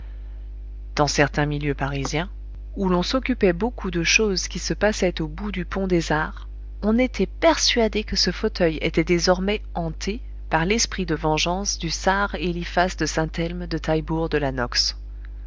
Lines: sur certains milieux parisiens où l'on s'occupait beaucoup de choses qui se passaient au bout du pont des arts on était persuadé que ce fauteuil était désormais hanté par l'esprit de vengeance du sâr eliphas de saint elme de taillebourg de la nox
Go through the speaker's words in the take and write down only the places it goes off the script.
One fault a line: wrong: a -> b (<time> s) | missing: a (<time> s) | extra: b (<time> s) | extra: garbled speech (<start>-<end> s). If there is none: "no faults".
wrong: sur -> dans (0.9 s)